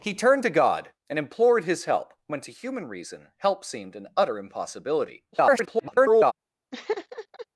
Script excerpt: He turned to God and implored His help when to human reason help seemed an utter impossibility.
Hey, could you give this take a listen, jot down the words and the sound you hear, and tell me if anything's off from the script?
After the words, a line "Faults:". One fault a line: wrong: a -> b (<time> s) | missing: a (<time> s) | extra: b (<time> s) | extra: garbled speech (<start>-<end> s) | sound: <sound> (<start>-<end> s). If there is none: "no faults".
He turned to God and implored His help when to human reason help seemed an utter impossibility. [garbled]
Faults:
extra: garbled speech (5.3-6.3 s)
sound: laugh (6.7-7.5 s)